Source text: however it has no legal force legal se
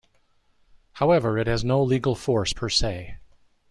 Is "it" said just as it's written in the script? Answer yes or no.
yes